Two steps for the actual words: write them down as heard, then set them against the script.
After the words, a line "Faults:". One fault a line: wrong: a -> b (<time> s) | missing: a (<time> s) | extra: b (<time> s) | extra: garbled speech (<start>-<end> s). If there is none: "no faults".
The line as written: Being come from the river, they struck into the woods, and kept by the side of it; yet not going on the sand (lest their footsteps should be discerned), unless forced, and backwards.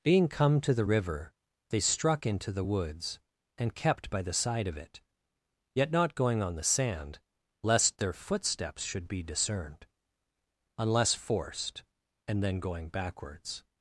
Being come to the river, they struck into the woods, and kept by the side of it; yet not going on the sand (lest their footsteps should be discerned), unless forced, and then going backwards.
Faults:
wrong: from -> to (0.6 s)
extra: then going (12.4 s)